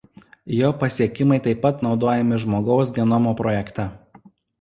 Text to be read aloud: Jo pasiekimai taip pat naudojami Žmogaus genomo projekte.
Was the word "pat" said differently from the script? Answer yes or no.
no